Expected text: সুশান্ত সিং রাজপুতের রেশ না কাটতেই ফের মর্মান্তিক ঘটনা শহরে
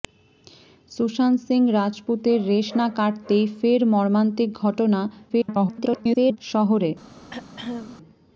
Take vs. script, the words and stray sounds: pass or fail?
fail